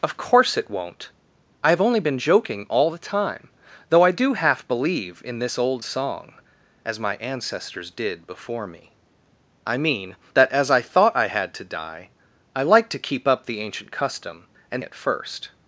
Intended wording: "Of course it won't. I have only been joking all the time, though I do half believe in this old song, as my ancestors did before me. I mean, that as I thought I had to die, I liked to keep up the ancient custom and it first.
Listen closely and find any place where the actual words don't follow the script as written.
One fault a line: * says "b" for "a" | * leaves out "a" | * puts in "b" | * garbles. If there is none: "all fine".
all fine